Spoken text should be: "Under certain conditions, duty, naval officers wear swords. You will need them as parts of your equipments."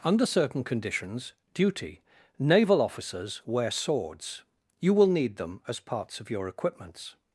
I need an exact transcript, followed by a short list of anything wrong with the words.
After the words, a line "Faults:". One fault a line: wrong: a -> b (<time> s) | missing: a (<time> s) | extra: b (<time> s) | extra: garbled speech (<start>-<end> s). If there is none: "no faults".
"Under certain conditions, duty, naval officers wear swords. You will need them as parts of your equipments."
Faults:
no faults